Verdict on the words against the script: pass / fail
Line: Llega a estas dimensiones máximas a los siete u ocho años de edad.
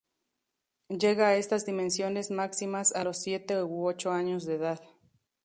pass